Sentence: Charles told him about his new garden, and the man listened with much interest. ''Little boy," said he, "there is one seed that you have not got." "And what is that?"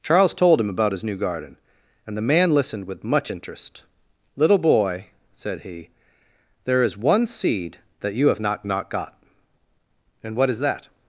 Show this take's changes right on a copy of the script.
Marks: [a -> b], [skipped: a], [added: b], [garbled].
Charles told him about his new garden, and the man listened with much interest. ''Little boy," said he, "there is one seed that you have not [added: not] got." "And what is that?"